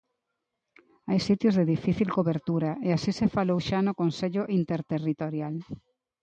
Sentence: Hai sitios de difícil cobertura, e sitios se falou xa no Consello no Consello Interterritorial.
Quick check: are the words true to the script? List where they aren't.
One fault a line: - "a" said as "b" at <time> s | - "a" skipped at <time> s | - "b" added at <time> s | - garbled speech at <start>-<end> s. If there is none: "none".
- "sitios" said as "así" at 3.0 s
- "no Consello" skipped at 4.4 s